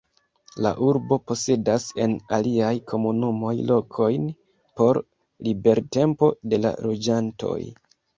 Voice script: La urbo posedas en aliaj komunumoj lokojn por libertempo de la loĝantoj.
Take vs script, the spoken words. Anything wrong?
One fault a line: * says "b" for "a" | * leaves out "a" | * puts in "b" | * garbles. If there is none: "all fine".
all fine